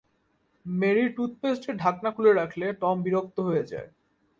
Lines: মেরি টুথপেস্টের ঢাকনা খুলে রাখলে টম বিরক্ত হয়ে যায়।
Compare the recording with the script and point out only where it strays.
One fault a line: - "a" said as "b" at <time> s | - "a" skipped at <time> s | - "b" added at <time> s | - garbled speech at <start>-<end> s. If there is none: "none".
none